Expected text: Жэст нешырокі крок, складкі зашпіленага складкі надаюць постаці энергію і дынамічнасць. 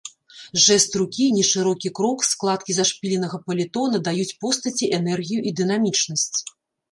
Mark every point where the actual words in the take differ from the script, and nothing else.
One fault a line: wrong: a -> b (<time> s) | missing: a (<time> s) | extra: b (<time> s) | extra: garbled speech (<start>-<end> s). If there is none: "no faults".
extra: рукі (1.0 s)
wrong: складкі -> паліто (3.5 s)